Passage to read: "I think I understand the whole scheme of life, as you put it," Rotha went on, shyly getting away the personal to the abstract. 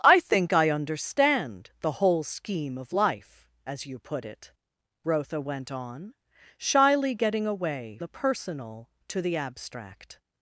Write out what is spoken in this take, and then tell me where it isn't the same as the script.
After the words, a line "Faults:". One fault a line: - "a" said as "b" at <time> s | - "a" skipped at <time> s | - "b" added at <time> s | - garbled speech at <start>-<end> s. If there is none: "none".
"I think I understand the whole scheme of life, as you put it," Rotha went on, shyly getting away the personal to the abstract.
Faults:
none